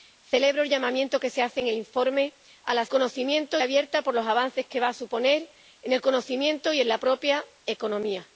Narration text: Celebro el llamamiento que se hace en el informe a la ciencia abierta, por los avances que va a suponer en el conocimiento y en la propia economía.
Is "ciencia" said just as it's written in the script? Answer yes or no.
no